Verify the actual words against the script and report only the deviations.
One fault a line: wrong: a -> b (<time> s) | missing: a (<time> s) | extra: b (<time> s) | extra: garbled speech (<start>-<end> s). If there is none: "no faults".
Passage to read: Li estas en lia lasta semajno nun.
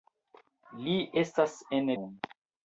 missing: lia lasta semajno (1.9 s)